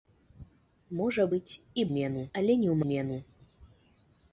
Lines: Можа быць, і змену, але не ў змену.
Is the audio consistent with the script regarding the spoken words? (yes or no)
yes